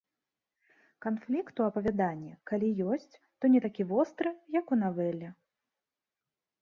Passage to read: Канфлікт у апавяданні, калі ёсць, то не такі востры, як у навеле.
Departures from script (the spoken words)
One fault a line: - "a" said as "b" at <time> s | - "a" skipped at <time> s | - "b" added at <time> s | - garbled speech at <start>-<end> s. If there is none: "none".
none